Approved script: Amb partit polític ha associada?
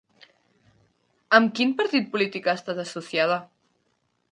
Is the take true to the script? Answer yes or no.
no